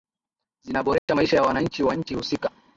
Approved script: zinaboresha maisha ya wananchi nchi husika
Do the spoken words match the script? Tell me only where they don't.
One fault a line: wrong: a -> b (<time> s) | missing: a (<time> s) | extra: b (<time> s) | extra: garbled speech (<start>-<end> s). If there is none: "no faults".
extra: wa (1.8 s)